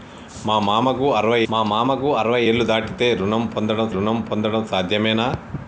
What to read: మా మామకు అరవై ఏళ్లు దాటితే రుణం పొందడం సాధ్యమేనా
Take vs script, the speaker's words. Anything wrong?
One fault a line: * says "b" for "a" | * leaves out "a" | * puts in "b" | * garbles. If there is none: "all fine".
* puts in "మా మామకు అరవై"
* puts in "రుణం పొందడం"